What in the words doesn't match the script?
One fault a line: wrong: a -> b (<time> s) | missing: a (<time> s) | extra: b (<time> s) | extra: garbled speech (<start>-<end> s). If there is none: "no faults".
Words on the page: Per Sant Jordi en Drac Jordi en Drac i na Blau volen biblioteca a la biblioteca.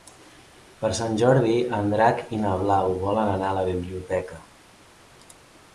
missing: Jordi en Drac (2.2 s)
wrong: biblioteca -> anar (3.4 s)